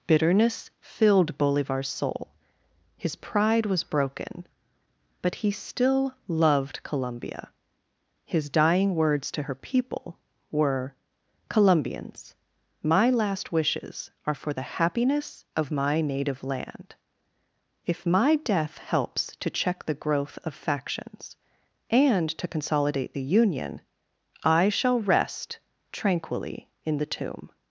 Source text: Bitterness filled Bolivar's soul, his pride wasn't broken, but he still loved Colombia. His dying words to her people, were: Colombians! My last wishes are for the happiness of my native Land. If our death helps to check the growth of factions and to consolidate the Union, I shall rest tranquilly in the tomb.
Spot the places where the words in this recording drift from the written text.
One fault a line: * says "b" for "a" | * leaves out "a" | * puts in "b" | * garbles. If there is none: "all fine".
* says "was" for "wasn't"
* says "my" for "our"